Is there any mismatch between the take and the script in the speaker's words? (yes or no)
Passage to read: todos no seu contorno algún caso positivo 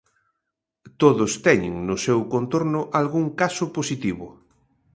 yes